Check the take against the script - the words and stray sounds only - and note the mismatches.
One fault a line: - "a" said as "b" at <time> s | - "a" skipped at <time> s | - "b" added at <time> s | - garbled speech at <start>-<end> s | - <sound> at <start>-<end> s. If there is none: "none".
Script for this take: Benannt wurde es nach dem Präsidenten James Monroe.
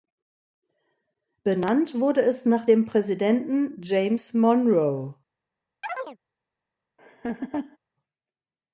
- chirp at 5.8-6.2 s
- laugh at 7.0-7.8 s